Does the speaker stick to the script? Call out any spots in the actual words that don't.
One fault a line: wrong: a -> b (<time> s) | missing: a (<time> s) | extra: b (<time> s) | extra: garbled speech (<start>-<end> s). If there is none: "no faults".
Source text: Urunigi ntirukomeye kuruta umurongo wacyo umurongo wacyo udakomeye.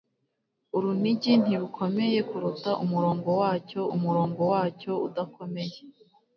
no faults